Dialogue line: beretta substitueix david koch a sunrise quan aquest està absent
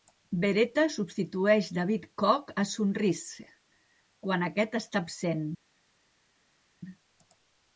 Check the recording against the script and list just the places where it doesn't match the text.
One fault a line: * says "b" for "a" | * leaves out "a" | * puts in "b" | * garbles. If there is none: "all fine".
all fine